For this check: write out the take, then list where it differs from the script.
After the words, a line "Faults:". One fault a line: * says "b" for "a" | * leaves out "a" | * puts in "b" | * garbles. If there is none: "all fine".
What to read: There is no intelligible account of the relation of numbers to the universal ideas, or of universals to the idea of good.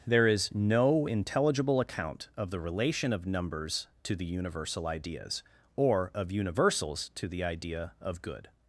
There is no intelligible account of the relation of numbers to the universal ideas, or of universals to the idea of good.
Faults:
all fine